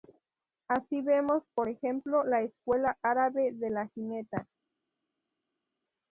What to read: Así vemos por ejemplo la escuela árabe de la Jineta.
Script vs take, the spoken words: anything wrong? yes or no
no